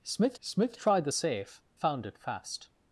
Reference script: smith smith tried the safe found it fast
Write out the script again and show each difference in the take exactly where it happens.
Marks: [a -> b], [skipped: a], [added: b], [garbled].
smith smith tried the safe found it fast